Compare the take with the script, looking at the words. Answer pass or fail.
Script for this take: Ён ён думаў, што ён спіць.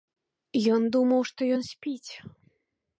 fail